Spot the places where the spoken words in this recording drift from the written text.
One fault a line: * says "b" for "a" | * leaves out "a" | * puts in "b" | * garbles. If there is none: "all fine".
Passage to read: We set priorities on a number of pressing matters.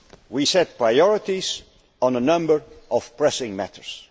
all fine